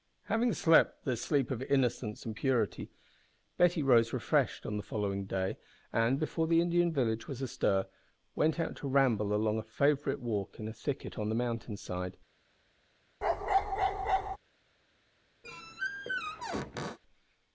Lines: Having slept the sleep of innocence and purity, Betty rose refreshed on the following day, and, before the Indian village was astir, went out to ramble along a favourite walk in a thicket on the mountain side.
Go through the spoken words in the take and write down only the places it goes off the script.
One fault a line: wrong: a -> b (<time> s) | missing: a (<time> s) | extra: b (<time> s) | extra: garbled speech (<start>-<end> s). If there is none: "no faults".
no faults